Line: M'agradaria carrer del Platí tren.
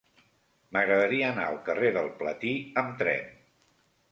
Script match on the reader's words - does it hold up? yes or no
no